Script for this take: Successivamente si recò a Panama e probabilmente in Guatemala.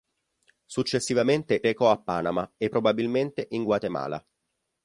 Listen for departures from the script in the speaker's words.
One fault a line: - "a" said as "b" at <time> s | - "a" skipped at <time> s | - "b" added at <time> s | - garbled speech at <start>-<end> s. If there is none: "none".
- "si" skipped at 1.6 s